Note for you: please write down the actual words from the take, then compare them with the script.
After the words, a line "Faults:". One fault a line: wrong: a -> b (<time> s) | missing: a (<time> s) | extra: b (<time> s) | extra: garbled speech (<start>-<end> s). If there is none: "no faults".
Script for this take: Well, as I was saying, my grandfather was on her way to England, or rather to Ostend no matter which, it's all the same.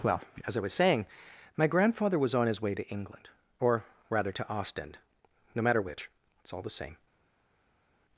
Well, as I was saying, my grandfather was on his way to England, or rather to Ostend no matter which, it's all the same.
Faults:
wrong: her -> his (2.5 s)